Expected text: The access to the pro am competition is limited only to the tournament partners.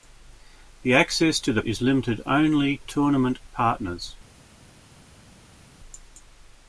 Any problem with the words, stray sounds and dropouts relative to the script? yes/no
yes